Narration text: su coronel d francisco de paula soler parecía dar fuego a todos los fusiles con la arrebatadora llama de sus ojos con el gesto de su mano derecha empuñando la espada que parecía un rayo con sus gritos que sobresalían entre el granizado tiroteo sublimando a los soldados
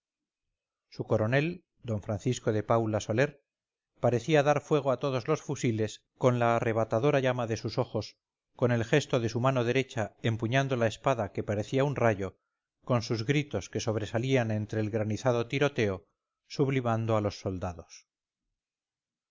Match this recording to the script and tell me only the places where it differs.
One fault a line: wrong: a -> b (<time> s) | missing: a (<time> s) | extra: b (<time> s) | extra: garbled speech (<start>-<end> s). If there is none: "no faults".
no faults